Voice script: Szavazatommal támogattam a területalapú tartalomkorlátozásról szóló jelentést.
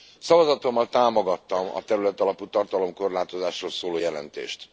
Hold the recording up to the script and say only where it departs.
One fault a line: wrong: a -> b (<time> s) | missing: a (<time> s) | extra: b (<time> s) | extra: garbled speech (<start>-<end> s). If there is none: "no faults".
no faults